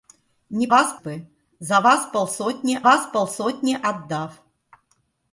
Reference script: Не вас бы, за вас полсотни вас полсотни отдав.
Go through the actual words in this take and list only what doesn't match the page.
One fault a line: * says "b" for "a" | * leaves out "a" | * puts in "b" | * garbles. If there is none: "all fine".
all fine